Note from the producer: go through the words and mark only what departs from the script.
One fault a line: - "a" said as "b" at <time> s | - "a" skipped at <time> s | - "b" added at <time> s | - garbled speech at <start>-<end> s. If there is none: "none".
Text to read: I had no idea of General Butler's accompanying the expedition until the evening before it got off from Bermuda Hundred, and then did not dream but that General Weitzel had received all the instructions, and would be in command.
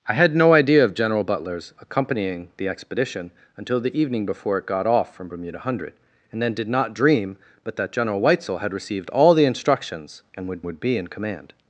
- "would" added at 10.6 s